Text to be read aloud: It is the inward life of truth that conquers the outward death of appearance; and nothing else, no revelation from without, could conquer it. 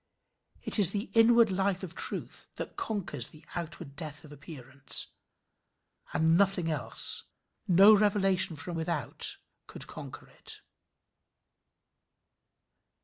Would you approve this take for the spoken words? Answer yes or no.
yes